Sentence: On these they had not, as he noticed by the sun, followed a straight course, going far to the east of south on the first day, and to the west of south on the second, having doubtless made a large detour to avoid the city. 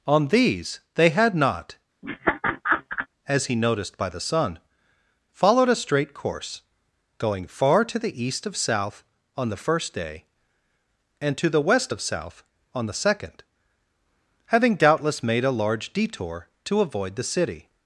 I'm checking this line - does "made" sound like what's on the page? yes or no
yes